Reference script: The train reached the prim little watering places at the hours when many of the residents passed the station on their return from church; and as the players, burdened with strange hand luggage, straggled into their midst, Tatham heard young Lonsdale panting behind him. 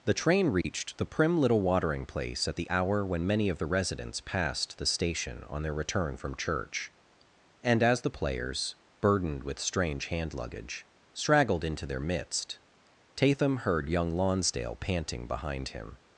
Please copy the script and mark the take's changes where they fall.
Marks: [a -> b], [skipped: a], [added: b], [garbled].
The train reached the prim little watering [places -> place] at the [hours -> hour] when many of the residents passed the station on their return from church; and as the players, burdened with strange hand luggage, straggled into their midst, Tatham heard young Lonsdale panting behind him.